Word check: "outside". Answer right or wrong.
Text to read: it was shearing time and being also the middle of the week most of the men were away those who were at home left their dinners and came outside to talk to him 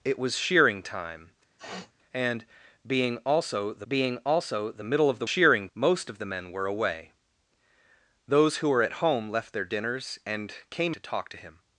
wrong